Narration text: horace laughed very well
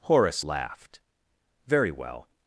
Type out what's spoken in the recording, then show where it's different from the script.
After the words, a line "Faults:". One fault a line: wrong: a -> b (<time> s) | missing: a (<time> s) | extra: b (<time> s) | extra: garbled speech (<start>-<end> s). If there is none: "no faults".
horace laughed very well
Faults:
no faults